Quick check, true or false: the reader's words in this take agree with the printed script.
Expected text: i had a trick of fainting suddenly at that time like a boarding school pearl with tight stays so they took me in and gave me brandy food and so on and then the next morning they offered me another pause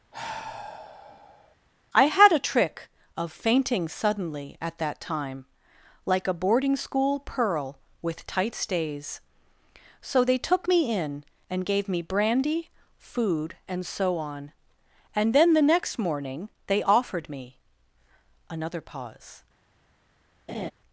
true